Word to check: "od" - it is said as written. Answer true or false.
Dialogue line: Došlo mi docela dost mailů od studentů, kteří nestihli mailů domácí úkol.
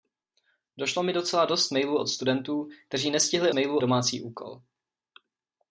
true